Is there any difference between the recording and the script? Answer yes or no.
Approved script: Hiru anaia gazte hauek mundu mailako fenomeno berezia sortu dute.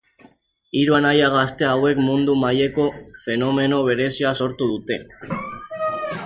no